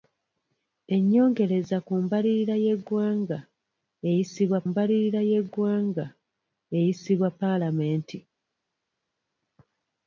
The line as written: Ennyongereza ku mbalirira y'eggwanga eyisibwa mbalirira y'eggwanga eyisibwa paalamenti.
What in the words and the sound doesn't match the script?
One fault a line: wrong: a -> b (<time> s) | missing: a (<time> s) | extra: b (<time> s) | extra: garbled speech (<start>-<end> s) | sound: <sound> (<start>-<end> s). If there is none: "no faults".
no faults